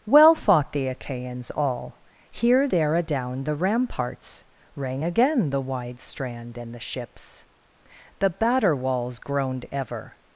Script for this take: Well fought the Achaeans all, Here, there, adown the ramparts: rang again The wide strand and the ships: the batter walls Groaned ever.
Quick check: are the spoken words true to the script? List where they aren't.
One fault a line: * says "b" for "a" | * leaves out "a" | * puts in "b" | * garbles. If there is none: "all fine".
all fine